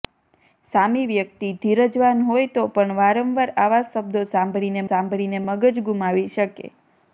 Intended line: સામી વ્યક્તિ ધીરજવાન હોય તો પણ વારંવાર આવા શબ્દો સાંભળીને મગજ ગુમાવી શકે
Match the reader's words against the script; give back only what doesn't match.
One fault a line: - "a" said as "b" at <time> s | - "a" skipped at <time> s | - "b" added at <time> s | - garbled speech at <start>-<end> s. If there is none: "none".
- "સાંભળીને" added at 4.9 s